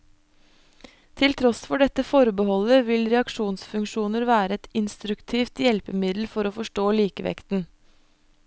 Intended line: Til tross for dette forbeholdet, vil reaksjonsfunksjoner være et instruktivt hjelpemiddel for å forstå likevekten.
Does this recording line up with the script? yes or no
yes